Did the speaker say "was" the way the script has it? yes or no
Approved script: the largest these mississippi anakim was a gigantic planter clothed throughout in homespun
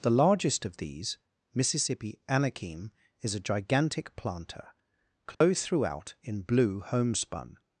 no